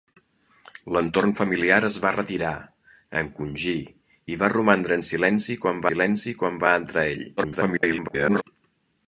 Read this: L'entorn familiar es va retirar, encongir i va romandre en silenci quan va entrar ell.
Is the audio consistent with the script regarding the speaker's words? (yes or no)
no